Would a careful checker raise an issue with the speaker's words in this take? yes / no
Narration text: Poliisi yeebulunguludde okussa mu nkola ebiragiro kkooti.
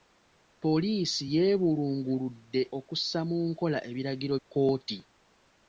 no